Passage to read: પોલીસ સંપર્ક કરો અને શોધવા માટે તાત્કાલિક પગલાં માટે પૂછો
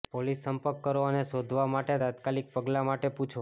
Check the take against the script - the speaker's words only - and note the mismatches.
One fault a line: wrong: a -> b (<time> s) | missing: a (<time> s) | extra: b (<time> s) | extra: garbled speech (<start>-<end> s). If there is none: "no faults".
no faults